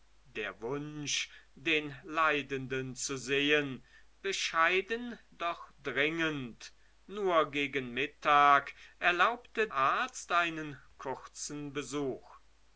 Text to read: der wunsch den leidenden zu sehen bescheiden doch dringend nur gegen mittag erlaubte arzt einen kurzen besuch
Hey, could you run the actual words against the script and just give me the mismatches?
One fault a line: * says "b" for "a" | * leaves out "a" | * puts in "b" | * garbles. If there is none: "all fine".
all fine